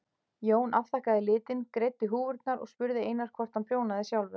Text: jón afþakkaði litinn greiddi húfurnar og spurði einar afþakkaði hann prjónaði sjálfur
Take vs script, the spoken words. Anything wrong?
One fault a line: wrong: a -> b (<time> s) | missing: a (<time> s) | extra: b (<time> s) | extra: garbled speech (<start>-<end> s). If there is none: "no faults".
wrong: afþakkaði -> hvort (3.4 s)